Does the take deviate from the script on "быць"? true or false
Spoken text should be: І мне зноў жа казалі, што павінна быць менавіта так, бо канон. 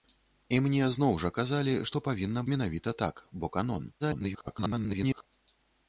true